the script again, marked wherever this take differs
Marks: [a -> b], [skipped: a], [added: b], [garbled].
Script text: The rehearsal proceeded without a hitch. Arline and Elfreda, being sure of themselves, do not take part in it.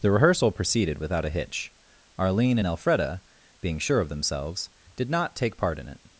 The rehearsal proceeded without a hitch. Arline and Elfreda, being sure of themselves, [do -> did] not take part in it.